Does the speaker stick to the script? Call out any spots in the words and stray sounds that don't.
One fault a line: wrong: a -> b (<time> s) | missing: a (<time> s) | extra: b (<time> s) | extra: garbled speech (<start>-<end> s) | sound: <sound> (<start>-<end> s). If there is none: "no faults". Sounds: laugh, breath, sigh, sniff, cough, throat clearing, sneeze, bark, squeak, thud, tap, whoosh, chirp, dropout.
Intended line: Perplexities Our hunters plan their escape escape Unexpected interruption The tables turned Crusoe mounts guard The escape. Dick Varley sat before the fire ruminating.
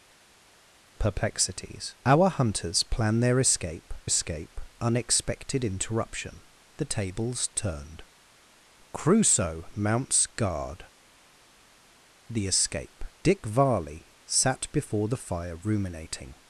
no faults